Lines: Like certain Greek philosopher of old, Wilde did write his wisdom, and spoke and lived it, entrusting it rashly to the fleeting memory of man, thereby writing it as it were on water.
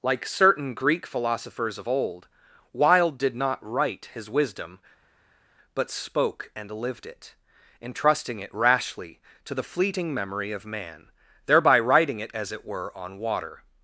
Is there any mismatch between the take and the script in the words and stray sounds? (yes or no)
yes